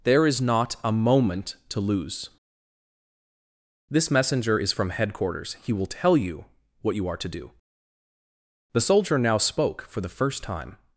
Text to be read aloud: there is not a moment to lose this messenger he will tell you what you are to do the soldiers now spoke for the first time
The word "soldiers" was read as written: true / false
false